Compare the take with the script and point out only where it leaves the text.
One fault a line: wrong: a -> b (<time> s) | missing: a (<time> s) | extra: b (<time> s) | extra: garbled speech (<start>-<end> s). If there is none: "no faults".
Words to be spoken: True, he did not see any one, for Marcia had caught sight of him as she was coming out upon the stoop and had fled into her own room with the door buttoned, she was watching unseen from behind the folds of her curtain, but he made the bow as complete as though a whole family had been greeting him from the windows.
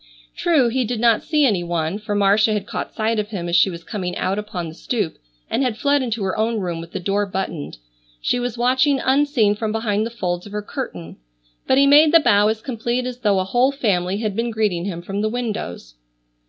no faults